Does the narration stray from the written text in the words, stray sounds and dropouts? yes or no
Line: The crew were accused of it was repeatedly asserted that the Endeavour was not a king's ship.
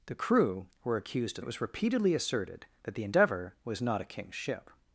no